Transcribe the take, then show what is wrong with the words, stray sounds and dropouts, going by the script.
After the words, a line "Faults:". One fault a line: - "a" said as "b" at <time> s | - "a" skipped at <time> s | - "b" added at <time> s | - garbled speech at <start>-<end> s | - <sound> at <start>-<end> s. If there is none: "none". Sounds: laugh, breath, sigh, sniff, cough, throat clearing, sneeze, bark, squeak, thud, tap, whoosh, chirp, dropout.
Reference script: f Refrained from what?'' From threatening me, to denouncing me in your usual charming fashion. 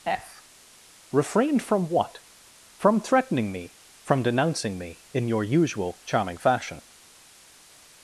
f Refrained from what?'' From threatening me, from denouncing me in your usual charming fashion.
Faults:
- "to" said as "from" at 4.0 s